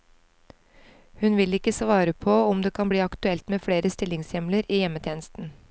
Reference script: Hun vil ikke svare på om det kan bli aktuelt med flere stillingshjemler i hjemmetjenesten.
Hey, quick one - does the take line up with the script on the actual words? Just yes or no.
yes